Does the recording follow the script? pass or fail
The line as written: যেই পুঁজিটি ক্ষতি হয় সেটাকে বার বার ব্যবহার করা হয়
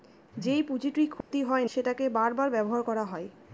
pass